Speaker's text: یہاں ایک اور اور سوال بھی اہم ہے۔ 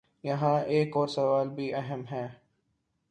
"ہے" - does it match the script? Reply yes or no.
yes